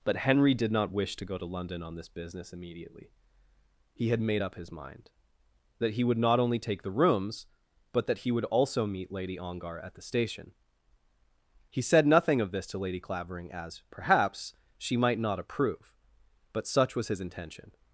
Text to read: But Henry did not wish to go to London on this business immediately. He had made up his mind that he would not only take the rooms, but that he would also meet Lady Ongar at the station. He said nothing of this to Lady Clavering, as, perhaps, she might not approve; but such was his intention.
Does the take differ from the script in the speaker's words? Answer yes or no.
no